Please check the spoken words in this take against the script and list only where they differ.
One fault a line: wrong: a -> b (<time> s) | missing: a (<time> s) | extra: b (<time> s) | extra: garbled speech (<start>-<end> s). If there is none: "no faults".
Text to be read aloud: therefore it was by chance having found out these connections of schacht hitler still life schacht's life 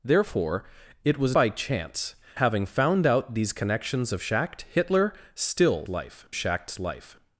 no faults